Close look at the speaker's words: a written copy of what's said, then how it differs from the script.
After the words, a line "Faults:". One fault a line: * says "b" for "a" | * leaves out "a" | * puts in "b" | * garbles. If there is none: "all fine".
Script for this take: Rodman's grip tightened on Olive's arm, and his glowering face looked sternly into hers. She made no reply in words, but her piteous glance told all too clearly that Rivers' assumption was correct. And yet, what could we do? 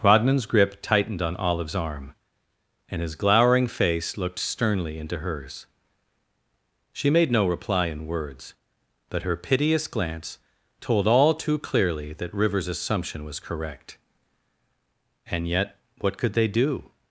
Rodman's grip tightened on Olive's arm, and his glowering face looked sternly into hers. She made no reply in words, but her piteous glance told all too clearly that Rivers' assumption was correct. And yet, what could they do?
Faults:
* says "they" for "we"